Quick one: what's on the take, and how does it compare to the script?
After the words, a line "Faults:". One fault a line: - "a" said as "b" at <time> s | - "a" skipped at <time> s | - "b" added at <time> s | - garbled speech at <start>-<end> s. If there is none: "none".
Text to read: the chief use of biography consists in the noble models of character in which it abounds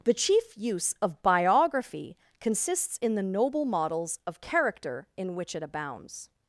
the chief use of biography consists in the noble models of character in which it abounds
Faults:
none